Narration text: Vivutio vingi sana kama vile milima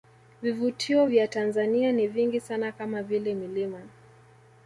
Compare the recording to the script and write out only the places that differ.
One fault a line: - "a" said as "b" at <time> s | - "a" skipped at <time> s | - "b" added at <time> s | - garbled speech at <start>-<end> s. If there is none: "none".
- "vya Tanzania ni" added at 1.0 s